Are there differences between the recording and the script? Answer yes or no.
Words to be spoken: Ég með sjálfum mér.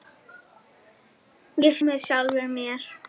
no